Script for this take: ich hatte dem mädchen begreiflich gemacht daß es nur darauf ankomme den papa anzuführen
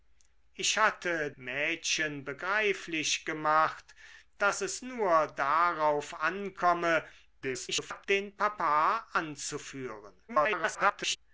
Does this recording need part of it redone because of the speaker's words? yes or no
yes